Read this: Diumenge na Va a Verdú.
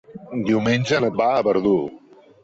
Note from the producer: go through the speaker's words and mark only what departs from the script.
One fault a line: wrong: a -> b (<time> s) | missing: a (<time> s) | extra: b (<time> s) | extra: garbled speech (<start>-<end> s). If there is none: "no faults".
no faults